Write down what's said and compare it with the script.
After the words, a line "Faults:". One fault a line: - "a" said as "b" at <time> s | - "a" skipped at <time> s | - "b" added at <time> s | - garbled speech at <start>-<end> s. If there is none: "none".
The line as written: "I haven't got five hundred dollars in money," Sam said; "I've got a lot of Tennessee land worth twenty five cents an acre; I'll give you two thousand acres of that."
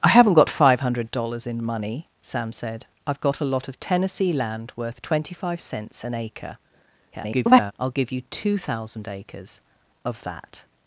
"I haven't got five hundred dollars in money," Sam said; "I've got a lot of Tennessee land worth twenty five cents an acre; [garbled] I'll give you two thousand acres of that."
Faults:
- garbled speech at 7.1-7.7 s